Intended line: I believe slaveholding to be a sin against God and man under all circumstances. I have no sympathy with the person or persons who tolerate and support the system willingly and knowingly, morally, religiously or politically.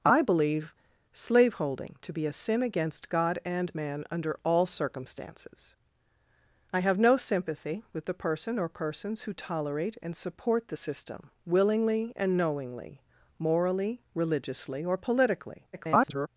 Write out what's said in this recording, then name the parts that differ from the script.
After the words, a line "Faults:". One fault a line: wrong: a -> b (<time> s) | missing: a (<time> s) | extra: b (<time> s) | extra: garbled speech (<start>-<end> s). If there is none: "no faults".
I believe slaveholding to be a sin against God and man under all circumstances. I have no sympathy with the person or persons who tolerate and support the system willingly and knowingly, morally, religiously or politically. [garbled]
Faults:
extra: garbled speech (15.7-16.3 s)